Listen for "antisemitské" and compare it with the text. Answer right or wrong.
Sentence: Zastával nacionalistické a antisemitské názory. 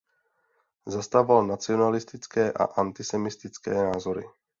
right